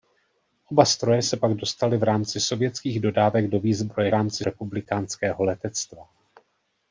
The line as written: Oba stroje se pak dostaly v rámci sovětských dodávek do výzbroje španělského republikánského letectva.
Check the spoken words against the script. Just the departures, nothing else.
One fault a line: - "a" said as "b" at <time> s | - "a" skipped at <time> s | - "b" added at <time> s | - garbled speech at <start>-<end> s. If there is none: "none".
- "španělského" said as "rámci" at 4.1 s